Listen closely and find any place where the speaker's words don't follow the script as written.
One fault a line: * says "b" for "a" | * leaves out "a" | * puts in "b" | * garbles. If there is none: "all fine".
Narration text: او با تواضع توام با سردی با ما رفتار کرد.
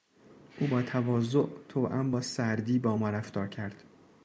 all fine